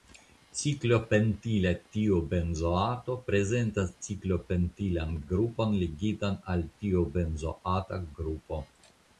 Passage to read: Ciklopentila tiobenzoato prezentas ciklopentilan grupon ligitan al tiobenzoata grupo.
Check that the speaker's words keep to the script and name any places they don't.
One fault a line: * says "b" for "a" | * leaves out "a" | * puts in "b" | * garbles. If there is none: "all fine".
all fine